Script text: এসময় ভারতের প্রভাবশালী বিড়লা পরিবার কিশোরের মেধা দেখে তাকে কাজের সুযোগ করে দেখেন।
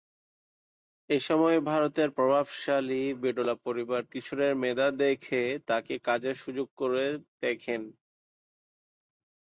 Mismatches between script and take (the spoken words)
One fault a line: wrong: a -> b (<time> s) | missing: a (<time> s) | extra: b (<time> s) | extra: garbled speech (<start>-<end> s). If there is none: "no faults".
no faults